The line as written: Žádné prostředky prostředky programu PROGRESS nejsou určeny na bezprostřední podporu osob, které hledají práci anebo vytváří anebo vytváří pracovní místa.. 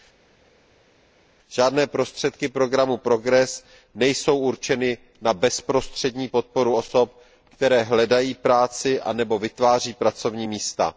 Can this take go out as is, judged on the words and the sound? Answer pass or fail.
fail